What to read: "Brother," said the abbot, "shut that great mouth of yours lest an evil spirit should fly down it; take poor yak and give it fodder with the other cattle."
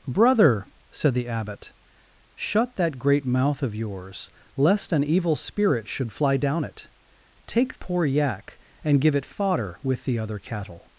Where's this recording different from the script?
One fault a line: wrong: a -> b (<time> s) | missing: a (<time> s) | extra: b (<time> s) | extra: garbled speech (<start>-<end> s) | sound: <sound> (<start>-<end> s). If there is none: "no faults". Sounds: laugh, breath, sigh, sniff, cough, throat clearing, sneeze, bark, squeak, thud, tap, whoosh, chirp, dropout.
no faults